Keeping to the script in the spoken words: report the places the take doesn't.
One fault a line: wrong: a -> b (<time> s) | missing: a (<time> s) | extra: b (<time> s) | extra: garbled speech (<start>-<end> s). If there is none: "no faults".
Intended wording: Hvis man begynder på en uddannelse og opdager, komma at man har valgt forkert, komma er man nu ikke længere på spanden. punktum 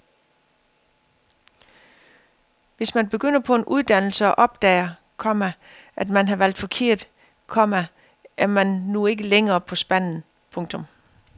no faults